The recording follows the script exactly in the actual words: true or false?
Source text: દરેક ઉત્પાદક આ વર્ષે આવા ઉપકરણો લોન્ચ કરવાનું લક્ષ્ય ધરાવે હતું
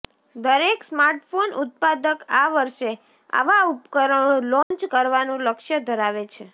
false